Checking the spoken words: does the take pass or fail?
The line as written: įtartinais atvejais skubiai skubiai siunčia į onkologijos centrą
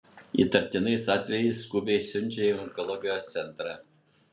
fail